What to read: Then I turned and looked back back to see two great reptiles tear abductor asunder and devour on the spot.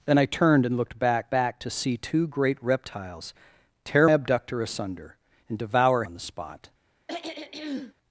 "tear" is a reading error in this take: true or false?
false